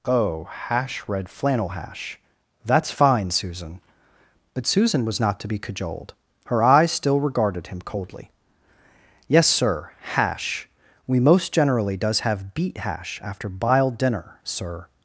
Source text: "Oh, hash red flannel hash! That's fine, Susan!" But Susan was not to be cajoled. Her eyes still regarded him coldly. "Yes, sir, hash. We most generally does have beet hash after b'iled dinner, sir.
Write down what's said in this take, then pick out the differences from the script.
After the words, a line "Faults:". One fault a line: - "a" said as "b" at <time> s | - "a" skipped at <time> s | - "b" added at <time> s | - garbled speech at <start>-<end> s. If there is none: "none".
"Oh, hash red flannel hash! That's fine, Susan!" But Susan was not to be cajoled. Her eyes still regarded him coldly. "Yes, sir, hash. We most generally does have beet hash after b'iled dinner, sir.
Faults:
none